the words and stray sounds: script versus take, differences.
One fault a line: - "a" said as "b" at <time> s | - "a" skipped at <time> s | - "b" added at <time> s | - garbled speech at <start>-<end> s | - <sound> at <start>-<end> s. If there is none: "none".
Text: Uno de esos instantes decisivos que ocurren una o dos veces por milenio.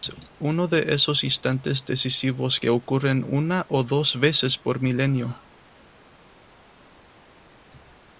none